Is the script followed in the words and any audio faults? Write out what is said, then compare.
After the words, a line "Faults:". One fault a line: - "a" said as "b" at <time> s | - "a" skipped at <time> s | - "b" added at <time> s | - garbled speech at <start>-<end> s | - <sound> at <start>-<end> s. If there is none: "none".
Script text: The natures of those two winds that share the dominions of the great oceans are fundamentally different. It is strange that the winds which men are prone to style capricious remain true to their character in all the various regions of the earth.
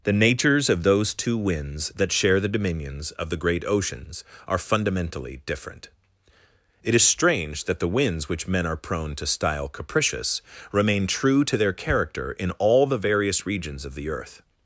The natures of those two winds that share the dominions of the great oceans are fundamentally different. It is strange that the winds which men are prone to style capricious remain true to their character in all the various regions of the earth.
Faults:
none